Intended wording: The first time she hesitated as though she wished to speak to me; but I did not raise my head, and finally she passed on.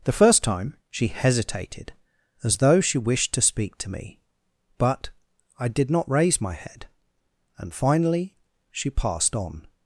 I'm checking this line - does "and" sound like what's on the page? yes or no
yes